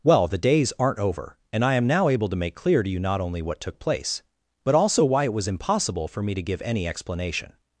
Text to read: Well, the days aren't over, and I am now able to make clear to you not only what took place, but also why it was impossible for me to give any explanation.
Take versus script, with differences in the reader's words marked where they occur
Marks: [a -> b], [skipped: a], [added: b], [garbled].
Well, the days aren't over, and I am now able to make clear to you not only what took place, but also why it was impossible for me to give any explanation.